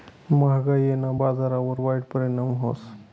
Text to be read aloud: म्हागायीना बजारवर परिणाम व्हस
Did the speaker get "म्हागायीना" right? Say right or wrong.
right